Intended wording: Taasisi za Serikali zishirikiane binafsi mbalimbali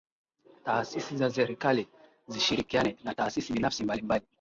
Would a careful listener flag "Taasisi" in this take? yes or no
no